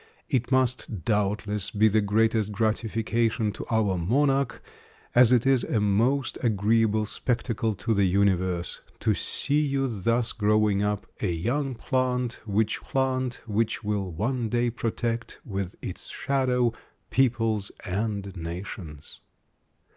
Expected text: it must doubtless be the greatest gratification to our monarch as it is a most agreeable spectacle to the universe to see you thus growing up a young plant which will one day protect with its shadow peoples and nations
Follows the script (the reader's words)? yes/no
no